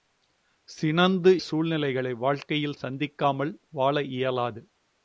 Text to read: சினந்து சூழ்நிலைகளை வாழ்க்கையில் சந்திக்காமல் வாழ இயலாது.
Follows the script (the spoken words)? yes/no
yes